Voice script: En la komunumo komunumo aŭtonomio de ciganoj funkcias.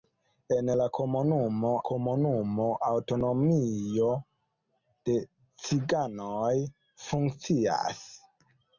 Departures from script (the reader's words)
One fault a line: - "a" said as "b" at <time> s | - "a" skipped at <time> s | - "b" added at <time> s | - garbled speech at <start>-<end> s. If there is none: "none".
none